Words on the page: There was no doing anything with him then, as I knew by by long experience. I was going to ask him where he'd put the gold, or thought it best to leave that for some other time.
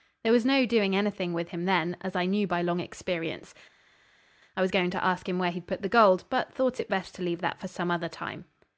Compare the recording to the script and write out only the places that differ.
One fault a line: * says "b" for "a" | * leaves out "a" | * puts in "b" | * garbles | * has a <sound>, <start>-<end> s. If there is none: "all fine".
* leaves out "by"
* says "but" for "or"